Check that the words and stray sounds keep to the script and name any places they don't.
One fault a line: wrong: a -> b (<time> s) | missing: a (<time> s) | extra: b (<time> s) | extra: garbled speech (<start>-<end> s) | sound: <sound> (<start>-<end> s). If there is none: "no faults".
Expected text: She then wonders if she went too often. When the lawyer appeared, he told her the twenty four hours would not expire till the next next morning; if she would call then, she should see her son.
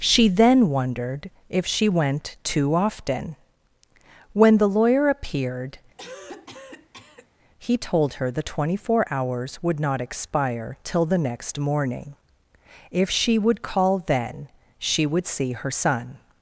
wrong: wonders -> wondered (0.7 s)
sound: cough (6.0-7.3 s)
missing: next (11.6 s)
wrong: should -> would (15.0 s)